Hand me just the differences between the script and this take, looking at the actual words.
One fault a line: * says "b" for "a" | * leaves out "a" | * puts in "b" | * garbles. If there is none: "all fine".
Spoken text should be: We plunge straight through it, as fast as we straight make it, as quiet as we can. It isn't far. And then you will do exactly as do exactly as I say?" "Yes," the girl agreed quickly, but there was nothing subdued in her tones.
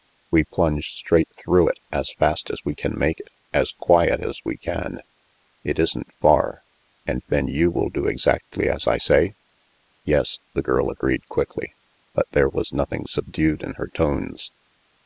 * says "can" for "straight"
* leaves out "do exactly as"